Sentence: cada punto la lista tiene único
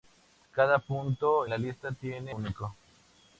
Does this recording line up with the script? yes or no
yes